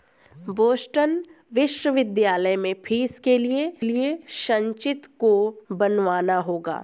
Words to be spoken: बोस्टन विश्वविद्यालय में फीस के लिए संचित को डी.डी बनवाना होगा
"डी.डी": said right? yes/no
no